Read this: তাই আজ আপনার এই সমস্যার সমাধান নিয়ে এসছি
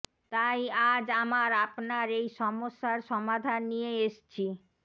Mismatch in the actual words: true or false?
true